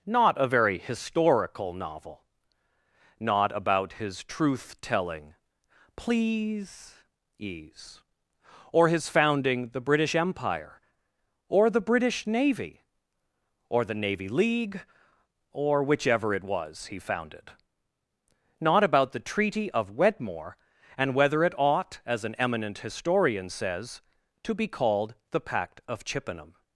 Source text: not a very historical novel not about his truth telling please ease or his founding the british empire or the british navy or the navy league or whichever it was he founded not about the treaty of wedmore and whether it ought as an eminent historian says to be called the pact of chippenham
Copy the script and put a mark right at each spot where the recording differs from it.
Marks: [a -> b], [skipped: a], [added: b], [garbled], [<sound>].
not a very historical novel not about his truth telling please ease or his founding the british empire or the british navy or the navy league or whichever it was he founded not about the treaty of wedmore and whether it ought as an eminent historian says to be called the pact of chippenham